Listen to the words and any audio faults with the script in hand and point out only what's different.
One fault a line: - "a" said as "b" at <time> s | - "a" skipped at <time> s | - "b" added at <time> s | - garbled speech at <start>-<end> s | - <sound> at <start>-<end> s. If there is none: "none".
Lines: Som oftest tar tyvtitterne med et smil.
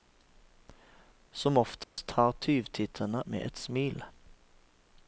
- dropout at 1.8-2.0 s